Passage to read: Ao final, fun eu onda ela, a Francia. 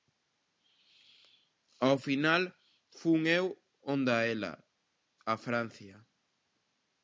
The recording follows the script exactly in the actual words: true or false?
true